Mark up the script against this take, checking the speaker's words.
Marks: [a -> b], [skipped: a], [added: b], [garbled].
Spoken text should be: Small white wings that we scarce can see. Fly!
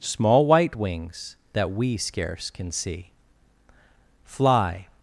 Small white wings that we scarce can see. Fly!